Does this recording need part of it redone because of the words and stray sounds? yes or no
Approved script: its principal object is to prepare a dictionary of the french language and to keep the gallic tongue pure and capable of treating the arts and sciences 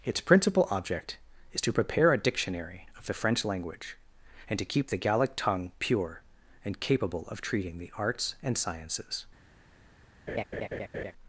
yes